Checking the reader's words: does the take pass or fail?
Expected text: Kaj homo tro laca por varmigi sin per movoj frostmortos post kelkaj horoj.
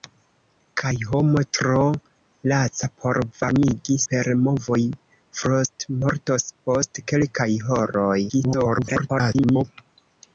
fail